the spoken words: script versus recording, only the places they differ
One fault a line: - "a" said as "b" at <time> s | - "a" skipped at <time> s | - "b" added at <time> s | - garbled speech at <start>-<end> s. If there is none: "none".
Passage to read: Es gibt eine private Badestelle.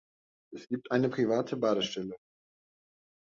none